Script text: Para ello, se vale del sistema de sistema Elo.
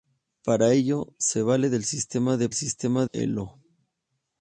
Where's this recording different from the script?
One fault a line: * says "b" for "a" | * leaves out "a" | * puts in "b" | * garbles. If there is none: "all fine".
all fine